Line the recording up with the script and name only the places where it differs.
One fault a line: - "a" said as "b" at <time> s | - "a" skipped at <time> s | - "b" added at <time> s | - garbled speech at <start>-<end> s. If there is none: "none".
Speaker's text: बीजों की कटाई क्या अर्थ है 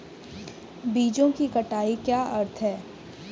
none